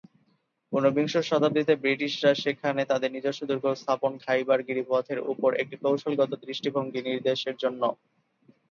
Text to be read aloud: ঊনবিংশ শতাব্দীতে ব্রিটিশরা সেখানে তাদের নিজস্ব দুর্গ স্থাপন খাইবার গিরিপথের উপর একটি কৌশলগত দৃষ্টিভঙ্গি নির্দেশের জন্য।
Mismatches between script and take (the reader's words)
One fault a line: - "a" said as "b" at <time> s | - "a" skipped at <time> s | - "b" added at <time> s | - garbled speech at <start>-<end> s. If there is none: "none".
none